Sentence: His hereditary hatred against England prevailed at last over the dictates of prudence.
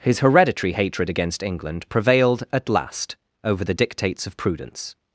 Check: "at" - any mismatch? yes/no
no